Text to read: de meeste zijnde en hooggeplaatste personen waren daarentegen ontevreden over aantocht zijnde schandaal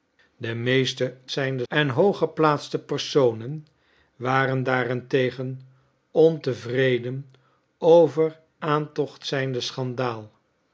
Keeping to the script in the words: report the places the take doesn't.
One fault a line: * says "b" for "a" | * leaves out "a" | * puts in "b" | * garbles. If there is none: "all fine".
all fine